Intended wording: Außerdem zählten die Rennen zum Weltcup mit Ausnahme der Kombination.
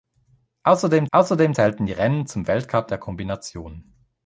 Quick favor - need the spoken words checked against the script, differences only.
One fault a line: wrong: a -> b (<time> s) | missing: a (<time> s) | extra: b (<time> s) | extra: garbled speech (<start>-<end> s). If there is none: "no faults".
extra: außerdem (1.1 s)
missing: mit Ausnahme (2.9 s)